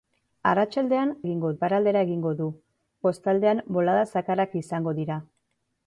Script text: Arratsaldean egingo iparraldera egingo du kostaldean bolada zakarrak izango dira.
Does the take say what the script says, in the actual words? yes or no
yes